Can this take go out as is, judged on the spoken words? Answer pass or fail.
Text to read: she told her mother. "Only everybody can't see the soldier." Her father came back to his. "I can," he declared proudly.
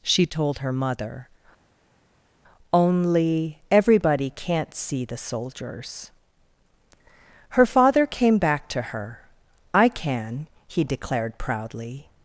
fail